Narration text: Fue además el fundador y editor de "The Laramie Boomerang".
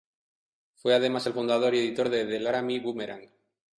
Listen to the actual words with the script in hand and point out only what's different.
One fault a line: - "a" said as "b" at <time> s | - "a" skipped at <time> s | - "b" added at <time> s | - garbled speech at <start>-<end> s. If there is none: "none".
none